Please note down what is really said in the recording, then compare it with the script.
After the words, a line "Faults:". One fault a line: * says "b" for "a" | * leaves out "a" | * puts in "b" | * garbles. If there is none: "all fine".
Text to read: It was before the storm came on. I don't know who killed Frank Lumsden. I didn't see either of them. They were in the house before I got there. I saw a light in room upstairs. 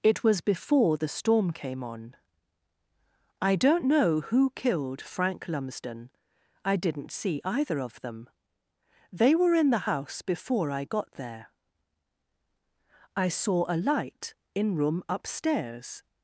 It was before the storm came on. I don't know who killed Frank Lumsden. I didn't see either of them. They were in the house before I got there. I saw a light in room upstairs.
Faults:
all fine